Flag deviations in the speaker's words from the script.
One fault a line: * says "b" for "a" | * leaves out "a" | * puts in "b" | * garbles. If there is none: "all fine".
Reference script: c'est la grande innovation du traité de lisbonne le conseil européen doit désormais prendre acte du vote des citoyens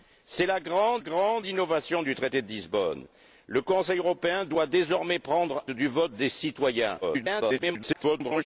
* puts in "grande"
* leaves out "acte"
* garbles